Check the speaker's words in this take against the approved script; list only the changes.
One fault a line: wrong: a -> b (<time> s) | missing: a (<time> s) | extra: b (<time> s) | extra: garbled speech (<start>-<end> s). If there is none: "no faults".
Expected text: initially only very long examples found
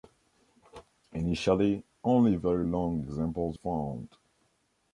no faults